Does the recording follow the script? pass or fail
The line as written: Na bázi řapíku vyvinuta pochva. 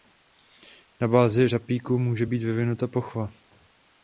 fail